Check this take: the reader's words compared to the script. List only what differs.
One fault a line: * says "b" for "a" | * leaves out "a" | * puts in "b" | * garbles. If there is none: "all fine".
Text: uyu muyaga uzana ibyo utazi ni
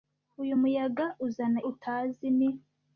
* leaves out "ibyo"